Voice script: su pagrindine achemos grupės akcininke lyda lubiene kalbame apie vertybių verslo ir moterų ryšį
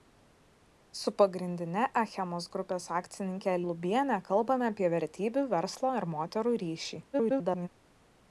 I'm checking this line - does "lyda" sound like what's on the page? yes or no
no